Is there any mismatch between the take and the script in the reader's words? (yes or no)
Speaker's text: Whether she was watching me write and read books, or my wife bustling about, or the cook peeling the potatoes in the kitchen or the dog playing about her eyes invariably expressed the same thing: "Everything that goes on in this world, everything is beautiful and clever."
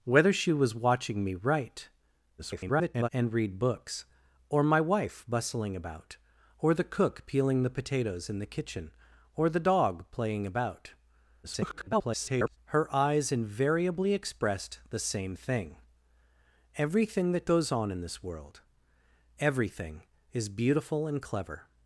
yes